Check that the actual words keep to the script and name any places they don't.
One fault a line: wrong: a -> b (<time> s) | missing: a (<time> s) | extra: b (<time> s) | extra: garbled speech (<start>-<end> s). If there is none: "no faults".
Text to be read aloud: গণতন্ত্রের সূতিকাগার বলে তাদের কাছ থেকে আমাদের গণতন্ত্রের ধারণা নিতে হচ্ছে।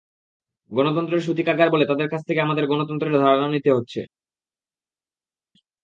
no faults